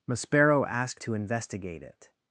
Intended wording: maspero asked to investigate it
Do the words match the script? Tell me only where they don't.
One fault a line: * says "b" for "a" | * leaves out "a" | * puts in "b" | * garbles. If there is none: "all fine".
all fine